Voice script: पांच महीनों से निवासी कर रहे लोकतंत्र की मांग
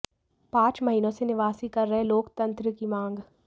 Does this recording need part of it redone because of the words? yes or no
no